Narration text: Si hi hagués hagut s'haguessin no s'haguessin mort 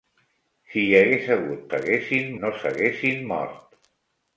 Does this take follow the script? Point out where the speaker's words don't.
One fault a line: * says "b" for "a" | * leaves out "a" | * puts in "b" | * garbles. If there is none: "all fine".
all fine